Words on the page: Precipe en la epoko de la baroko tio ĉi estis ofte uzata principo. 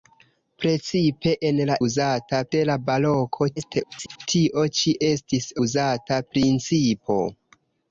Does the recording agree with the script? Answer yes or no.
no